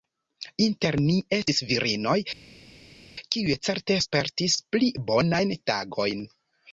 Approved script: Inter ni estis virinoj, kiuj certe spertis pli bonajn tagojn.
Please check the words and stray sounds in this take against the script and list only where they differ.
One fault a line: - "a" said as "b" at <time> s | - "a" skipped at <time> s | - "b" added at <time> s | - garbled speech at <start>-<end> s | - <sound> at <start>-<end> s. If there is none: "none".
none